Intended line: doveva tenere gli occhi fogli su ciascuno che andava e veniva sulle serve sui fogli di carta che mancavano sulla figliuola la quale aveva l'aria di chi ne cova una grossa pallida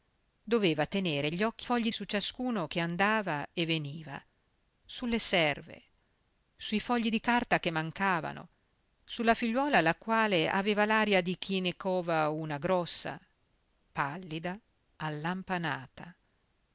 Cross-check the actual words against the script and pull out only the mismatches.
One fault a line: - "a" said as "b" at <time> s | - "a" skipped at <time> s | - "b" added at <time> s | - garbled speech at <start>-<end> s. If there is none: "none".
none